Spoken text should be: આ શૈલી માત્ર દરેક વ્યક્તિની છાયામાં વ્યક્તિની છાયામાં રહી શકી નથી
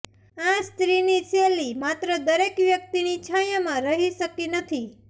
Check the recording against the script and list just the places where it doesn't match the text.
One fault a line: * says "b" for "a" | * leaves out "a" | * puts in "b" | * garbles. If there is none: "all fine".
* puts in "સ્ત્રીની"
* leaves out "વ્યક્તિની છાયામાં"